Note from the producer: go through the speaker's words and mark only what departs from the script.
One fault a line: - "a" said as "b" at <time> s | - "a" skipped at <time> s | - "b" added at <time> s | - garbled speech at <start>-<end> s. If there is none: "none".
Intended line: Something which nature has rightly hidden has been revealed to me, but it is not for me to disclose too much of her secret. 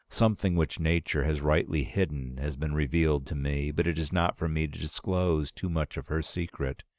none